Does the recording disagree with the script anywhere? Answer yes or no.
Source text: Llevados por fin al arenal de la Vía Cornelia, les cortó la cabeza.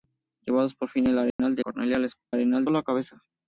yes